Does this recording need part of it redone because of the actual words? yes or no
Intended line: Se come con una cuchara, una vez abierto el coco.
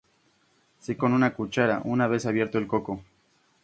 yes